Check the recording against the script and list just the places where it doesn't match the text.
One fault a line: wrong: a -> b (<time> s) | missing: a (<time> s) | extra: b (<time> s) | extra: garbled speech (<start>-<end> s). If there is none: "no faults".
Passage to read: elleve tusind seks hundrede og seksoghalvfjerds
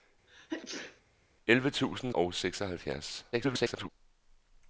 missing: seks hundrede (2.1 s)
extra: garbled speech (3.3-3.9 s)